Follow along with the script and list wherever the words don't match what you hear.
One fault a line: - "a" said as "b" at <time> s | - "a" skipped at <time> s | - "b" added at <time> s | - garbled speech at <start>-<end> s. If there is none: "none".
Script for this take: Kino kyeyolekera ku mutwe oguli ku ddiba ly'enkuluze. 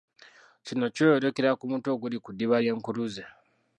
none